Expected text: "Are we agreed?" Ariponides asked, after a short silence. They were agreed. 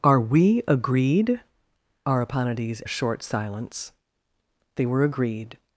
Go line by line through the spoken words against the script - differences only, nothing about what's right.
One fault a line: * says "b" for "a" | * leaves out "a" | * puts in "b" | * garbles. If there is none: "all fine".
* leaves out "asked after"